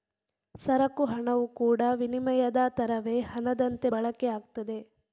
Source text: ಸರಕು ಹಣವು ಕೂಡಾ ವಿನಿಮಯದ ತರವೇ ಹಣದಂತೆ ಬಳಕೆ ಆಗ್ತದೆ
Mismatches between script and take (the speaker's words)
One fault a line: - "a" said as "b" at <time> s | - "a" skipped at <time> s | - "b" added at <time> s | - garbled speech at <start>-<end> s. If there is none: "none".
none